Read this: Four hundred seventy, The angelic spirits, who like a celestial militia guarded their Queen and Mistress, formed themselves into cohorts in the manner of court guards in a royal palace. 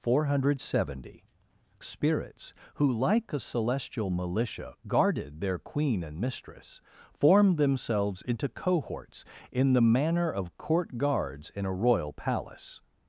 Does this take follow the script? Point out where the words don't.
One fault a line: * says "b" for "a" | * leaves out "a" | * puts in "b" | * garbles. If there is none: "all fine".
* leaves out "The angelic"